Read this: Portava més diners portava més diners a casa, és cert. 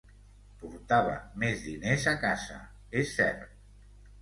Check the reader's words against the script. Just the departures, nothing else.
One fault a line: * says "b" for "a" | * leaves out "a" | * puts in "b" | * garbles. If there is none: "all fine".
* leaves out "portava més diners"